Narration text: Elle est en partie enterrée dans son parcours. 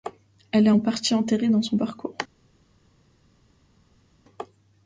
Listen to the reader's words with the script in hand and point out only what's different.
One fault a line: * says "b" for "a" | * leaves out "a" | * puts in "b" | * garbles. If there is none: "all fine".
all fine